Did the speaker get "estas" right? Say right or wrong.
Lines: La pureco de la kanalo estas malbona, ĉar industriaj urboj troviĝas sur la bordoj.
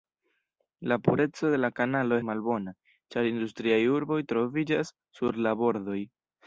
wrong